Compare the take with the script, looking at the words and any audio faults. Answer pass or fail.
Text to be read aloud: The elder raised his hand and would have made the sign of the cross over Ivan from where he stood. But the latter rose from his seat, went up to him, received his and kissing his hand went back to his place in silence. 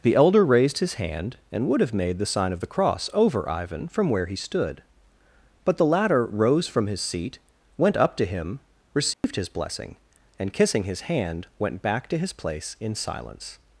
fail